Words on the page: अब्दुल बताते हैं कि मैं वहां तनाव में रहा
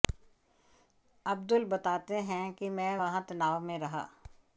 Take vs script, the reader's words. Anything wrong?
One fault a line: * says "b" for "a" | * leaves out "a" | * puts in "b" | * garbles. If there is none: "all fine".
all fine